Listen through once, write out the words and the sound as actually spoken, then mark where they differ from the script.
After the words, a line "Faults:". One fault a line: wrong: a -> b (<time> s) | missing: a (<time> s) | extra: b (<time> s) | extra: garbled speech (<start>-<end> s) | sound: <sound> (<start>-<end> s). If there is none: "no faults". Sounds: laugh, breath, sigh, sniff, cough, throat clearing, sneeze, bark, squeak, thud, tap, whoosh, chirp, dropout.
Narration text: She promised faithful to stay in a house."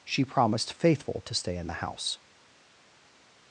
She promised faithful to stay in the house."
Faults:
wrong: a -> the (1.7 s)